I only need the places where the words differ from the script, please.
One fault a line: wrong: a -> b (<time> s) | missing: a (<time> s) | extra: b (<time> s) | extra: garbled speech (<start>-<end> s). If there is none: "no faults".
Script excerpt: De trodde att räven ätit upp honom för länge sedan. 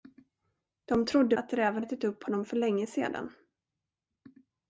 no faults